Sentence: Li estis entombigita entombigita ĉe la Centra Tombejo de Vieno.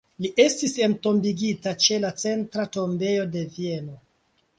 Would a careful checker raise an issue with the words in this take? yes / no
yes